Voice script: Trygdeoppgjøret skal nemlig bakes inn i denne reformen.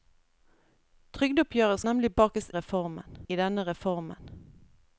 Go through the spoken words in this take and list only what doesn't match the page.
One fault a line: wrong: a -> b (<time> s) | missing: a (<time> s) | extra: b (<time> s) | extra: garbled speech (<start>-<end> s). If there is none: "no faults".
missing: skal (1.8 s)
wrong: inn -> reformen (2.6 s)